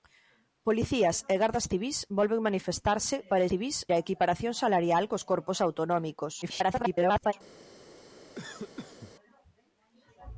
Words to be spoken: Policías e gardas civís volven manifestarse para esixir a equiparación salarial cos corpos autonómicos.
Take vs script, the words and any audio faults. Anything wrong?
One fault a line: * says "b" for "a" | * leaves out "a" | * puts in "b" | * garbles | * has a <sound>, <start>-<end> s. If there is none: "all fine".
* says "civís" for "esixir"
* garbles
* has a cough, 8.3-9.1 s